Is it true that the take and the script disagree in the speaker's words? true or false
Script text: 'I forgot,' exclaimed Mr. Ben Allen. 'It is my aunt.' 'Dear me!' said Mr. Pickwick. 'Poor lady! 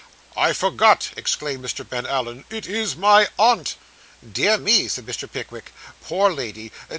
false